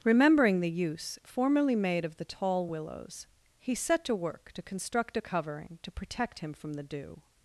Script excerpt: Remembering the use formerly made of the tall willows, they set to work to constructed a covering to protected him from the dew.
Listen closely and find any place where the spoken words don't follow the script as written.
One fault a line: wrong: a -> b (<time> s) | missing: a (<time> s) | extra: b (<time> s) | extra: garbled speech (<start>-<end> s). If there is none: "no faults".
wrong: they -> he (3.6 s)
wrong: constructed -> construct (4.6 s)
wrong: protected -> protect (5.9 s)